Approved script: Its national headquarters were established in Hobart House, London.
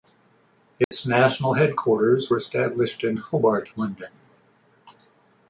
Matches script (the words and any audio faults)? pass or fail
fail